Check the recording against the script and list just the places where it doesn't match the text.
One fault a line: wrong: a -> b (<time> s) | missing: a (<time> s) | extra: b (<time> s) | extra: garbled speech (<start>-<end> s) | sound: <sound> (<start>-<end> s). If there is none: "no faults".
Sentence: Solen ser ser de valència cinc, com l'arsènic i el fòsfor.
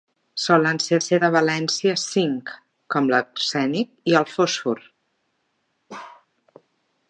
sound: bark (5.9-6.3 s)